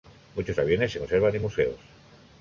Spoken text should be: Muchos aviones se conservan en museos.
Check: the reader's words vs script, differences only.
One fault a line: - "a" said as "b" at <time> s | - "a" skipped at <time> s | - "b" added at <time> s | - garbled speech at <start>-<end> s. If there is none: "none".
none